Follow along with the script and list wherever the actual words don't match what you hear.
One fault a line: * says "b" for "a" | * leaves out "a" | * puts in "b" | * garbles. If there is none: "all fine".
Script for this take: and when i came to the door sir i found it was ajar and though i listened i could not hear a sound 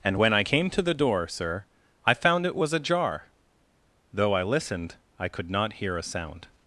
* leaves out "and"